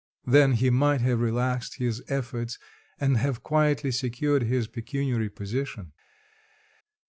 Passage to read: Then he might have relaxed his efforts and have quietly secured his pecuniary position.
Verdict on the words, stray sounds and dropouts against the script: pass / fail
pass